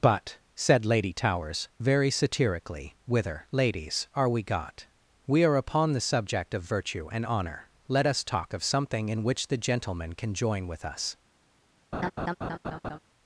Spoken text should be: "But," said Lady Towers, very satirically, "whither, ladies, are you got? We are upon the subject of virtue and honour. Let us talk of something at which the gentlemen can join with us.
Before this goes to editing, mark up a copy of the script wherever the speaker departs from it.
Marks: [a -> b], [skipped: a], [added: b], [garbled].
"But," said Lady Towers, very satirically, "whither, ladies, are [you -> we] got? We are upon the subject of virtue and honour. Let us talk of something [at -> in] which the gentlemen can join with us.